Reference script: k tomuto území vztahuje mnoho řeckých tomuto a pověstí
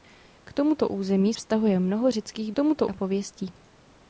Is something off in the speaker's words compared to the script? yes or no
no